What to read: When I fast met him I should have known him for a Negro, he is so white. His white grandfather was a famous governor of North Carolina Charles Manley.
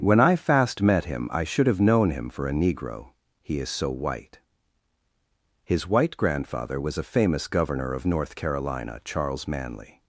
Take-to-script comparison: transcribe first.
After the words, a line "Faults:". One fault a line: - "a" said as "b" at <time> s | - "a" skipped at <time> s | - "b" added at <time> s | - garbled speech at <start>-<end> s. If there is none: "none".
When I fast met him I should have known him for a Negro, he is so white. His white grandfather was a famous governor of North Carolina Charles Manley.
Faults:
none